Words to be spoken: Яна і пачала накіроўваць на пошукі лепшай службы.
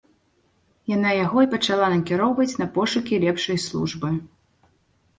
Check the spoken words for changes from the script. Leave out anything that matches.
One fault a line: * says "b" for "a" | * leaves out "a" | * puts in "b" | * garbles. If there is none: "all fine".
* puts in "яго"